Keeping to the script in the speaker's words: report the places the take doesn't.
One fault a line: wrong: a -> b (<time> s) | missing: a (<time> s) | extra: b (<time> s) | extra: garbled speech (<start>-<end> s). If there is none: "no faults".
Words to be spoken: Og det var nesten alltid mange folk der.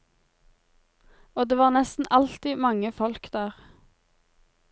no faults